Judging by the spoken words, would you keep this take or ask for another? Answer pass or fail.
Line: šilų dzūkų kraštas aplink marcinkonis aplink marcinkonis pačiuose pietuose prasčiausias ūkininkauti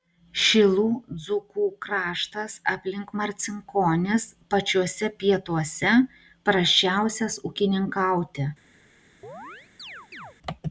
fail